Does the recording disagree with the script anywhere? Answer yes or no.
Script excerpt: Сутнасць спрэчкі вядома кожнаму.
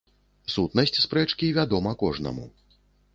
no